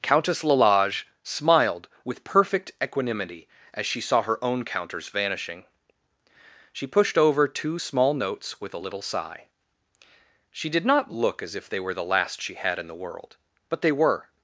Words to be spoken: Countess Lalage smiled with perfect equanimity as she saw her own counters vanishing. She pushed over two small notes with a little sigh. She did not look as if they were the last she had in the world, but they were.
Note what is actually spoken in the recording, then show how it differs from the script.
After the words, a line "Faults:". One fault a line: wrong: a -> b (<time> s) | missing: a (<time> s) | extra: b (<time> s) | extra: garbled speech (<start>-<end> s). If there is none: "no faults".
Countess Lalage smiled with perfect equanimity as she saw her own counters vanishing. She pushed over two small notes with a little sigh. She did not look as if they were the last she had in the world, but they were.
Faults:
no faults